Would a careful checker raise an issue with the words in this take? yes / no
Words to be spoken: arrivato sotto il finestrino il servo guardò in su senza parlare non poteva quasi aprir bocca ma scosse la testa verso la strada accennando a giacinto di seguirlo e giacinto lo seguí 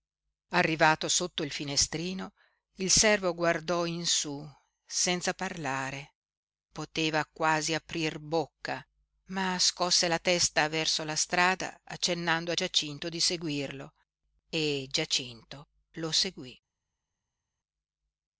yes